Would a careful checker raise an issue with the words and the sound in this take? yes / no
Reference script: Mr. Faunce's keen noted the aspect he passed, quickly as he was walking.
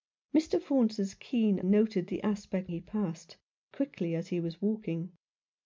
no